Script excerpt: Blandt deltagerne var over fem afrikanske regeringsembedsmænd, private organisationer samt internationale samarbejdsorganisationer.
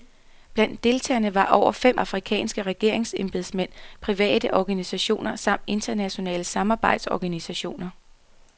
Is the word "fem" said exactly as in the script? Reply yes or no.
yes